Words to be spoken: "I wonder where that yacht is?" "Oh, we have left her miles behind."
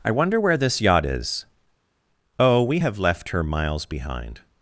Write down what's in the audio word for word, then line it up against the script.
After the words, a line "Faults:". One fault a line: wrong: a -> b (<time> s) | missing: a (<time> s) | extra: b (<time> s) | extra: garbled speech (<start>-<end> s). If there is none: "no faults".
"I wonder where this yacht is?" "Oh, we have left her miles behind."
Faults:
wrong: that -> this (0.6 s)